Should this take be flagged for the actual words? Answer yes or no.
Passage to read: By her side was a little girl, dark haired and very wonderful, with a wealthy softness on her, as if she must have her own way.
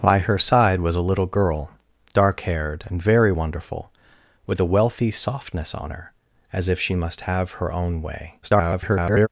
yes